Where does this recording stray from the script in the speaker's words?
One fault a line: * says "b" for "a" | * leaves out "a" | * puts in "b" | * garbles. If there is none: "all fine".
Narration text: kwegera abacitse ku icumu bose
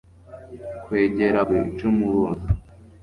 * leaves out "abacitse"